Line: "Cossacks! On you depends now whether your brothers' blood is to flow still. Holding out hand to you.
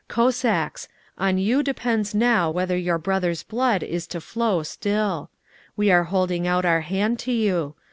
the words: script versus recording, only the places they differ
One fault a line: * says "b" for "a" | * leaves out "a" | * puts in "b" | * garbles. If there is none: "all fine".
* puts in "We are"
* puts in "our"